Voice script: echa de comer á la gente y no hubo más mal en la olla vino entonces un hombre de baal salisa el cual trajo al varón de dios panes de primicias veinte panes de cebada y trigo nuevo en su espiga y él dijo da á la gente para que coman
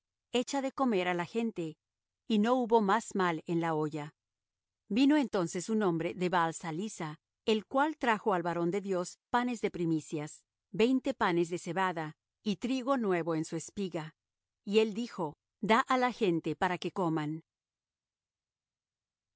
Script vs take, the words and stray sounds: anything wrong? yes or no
no